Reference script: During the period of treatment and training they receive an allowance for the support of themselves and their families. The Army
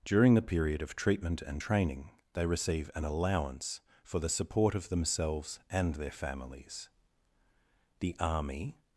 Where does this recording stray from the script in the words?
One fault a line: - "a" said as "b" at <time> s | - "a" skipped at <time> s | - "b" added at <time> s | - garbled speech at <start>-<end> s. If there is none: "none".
none